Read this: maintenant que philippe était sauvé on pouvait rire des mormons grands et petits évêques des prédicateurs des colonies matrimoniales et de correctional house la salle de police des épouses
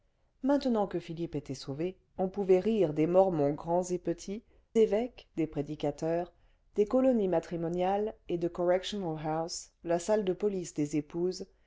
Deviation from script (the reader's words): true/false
false